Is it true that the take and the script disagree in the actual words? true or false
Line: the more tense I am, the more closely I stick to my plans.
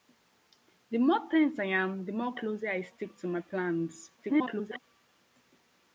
true